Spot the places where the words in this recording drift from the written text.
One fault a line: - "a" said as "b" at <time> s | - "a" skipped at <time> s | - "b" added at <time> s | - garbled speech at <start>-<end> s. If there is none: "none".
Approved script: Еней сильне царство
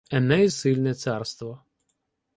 none